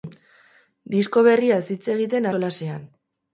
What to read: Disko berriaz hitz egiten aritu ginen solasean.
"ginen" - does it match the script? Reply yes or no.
no